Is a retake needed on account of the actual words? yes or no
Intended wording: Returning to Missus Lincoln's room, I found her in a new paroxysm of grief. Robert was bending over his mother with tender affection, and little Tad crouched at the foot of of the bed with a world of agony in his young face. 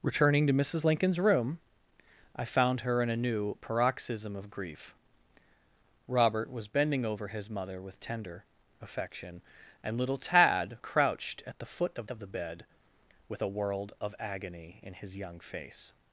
no